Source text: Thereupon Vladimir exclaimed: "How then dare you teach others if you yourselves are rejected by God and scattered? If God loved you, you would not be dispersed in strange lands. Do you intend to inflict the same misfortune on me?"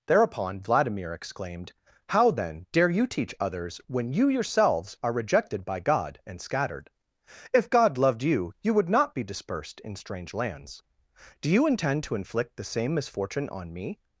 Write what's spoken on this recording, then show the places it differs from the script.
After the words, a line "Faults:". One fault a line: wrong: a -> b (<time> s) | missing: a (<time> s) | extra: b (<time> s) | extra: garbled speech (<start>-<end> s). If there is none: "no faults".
Thereupon Vladimir exclaimed: "How then dare you teach others when you yourselves are rejected by God and scattered? If God loved you, you would not be dispersed in strange lands. Do you intend to inflict the same misfortune on me?"
Faults:
wrong: if -> when (3.9 s)